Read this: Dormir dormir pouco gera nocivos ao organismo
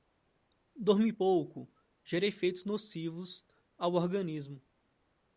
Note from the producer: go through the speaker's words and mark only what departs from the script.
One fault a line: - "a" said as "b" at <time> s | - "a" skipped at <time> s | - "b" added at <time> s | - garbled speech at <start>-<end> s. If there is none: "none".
- "dormir" skipped at 1.1 s
- "efeitos" added at 2.3 s